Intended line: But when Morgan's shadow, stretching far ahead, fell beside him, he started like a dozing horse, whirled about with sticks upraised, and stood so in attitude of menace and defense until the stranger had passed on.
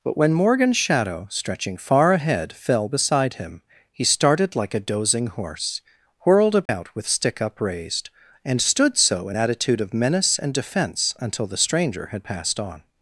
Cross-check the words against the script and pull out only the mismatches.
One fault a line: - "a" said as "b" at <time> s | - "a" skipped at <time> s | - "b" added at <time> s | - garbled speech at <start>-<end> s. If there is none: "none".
- "sticks" said as "stick" at 7.1 s